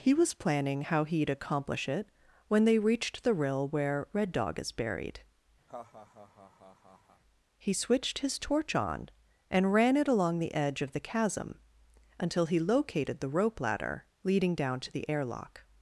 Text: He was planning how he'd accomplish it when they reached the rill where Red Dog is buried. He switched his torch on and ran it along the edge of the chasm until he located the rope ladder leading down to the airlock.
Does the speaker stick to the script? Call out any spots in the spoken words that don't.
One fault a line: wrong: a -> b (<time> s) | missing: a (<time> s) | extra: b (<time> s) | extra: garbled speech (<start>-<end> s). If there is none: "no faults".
no faults